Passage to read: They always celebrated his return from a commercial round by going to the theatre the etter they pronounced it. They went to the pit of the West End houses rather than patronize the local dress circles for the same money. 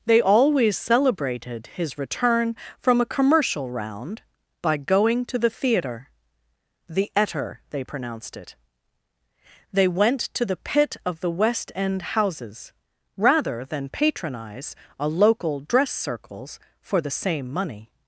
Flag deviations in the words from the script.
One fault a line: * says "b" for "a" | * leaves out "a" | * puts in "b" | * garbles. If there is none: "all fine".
* says "a" for "the"